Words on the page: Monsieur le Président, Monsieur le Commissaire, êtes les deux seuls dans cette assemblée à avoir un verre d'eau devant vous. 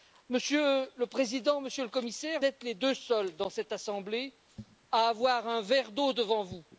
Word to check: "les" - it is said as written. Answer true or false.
true